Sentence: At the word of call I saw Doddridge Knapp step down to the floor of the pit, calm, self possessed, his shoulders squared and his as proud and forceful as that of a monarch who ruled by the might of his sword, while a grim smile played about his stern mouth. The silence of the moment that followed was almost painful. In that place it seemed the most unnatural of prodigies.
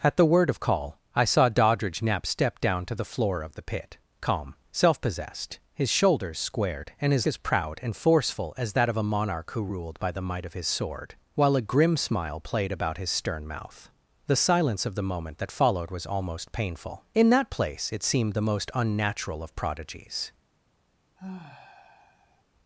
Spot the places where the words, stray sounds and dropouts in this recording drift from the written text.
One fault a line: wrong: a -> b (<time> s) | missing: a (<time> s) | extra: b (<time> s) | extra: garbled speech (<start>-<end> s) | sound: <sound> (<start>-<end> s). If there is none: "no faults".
sound: sigh (21.2-22.4 s)